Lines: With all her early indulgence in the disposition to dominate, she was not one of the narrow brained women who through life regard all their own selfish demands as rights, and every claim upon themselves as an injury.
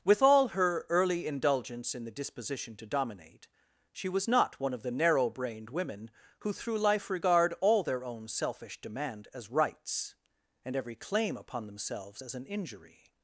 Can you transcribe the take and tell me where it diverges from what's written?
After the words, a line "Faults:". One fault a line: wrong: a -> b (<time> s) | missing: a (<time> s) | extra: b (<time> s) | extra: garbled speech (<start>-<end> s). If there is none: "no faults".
With all her early indulgence in the disposition to dominate, she was not one of the narrow brained women who through life regard all their own selfish demand as rights, and every claim upon themselves as an injury.
Faults:
wrong: demands -> demand (8.8 s)